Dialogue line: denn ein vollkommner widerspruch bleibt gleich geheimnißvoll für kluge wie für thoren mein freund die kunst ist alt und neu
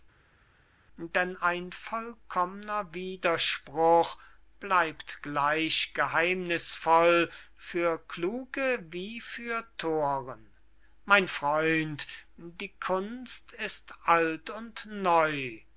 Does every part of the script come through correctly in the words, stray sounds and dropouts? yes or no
yes